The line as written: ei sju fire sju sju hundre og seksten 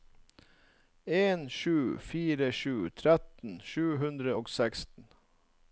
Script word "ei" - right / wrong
wrong